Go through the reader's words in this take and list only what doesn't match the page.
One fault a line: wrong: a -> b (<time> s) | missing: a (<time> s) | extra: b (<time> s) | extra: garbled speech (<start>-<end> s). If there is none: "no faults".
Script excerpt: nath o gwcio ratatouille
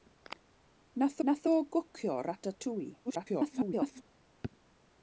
extra: nath (1.3 s)
extra: garbled speech (3.0-4.0 s)